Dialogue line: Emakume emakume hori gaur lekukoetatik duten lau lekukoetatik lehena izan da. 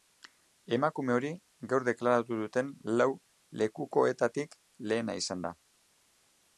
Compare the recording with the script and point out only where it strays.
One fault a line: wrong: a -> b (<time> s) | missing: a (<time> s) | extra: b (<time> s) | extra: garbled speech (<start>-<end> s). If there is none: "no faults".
missing: emakume (1.1 s)
wrong: lekukoetatik -> deklaratu (1.9 s)